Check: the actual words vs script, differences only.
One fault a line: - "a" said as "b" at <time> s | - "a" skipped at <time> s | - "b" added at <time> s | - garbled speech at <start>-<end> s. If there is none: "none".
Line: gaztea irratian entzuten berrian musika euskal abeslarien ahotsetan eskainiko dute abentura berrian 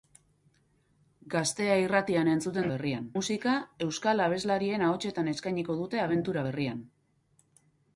none